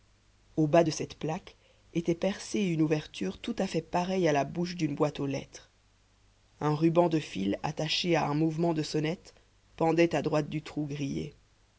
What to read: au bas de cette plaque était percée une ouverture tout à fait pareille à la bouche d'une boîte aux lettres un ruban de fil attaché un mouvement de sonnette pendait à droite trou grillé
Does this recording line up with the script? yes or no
no